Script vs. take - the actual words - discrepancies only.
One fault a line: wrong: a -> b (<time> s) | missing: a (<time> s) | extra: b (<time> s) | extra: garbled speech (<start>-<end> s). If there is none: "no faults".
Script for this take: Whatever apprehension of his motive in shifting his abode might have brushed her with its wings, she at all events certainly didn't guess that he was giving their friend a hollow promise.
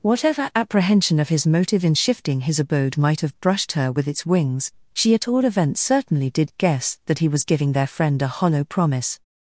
wrong: didn't -> did (6.3 s)